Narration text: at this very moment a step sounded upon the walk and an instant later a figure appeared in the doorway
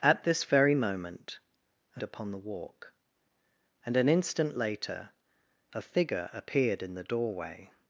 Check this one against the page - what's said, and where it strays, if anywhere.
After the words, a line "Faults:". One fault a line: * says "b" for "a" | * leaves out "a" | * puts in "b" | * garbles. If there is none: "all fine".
at this very moment a upon the walk and an instant later a figure appeared in the doorway
Faults:
* leaves out "step sounded"